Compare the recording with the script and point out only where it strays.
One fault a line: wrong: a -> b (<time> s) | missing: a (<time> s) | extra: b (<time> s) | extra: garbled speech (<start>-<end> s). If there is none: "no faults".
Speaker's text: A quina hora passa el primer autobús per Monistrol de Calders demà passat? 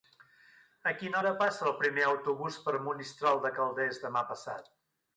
no faults